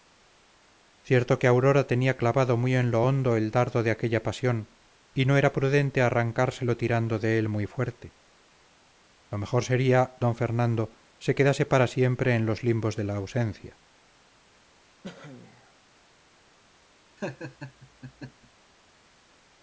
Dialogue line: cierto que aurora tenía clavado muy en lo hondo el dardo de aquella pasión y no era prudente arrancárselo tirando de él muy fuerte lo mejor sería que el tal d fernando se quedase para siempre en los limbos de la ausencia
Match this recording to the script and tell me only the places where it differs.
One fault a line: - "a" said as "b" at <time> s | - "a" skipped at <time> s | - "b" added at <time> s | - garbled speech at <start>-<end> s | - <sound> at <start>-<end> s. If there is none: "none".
- "que el tal" skipped at 10.1 s
- cough at 15.0-15.7 s
- laugh at 17.2-18.5 s